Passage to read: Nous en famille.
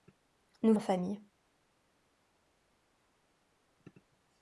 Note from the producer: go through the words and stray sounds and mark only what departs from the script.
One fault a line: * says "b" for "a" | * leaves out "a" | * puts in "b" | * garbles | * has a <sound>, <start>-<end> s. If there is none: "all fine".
all fine